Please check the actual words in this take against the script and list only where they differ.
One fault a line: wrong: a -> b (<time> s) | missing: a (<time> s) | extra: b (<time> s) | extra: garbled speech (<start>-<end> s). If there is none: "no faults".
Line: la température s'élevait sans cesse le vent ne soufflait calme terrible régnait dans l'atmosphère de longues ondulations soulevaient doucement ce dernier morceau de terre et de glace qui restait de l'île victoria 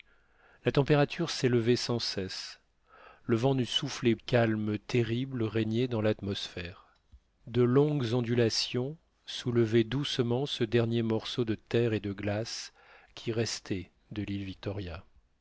no faults